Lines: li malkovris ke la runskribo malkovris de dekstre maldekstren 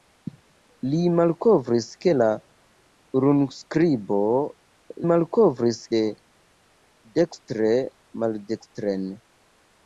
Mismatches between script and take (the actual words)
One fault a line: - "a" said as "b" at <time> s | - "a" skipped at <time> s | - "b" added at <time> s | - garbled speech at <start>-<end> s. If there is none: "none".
none